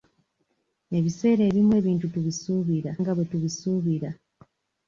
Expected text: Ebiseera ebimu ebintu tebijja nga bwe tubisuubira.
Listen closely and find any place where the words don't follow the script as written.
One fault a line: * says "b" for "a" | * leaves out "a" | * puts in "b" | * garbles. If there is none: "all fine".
* says "tubisuubira" for "tebijja"